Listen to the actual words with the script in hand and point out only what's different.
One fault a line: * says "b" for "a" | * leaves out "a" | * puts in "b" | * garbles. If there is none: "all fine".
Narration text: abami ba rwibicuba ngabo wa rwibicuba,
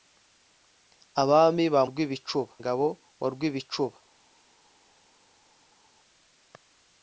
all fine